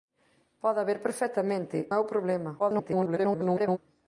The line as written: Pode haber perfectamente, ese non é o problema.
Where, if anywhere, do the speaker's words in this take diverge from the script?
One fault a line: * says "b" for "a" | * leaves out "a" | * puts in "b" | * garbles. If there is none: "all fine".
* leaves out "ese non"
* garbles